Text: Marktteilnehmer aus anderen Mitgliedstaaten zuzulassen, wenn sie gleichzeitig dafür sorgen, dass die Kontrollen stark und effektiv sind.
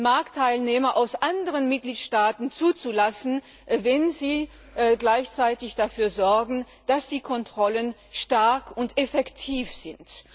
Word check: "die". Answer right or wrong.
right